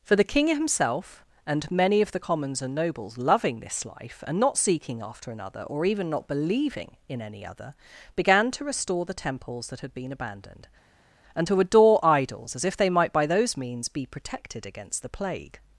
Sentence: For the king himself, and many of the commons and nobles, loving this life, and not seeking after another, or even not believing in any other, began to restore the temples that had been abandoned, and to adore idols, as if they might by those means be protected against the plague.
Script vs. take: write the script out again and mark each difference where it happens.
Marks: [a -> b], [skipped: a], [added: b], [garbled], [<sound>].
For the king himself, and many of the commons and nobles, loving this life, and not seeking after another, or even not believing in any other, began to restore the temples that had been abandoned, and to adore idols, as if they might by those means be protected against the plague.